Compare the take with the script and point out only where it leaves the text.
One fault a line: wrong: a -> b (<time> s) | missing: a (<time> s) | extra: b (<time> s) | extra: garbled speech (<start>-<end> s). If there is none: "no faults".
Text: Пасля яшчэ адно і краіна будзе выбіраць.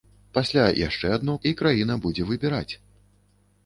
no faults